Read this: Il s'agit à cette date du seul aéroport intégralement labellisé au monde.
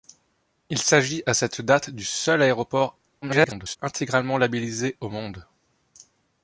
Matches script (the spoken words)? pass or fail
fail